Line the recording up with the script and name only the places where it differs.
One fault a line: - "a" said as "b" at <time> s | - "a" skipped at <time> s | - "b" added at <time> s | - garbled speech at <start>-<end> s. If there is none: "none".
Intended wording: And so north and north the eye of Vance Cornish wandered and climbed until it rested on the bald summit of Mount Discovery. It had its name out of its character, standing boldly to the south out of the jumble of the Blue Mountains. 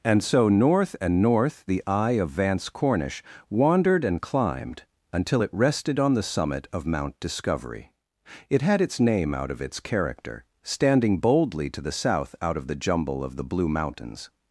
- "bald" skipped at 6.2 s